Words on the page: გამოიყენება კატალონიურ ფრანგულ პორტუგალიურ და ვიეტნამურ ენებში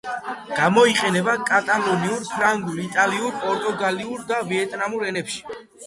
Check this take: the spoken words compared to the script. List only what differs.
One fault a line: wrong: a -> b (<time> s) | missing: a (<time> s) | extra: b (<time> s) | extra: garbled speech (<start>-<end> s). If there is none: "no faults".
extra: იტალიურ (2.8 s)